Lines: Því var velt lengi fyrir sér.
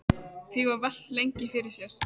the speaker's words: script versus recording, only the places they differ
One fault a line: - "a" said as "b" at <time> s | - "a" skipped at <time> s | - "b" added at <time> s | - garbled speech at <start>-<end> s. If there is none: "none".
none